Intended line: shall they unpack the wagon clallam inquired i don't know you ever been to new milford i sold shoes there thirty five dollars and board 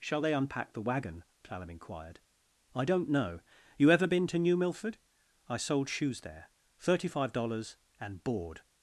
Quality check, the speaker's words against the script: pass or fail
pass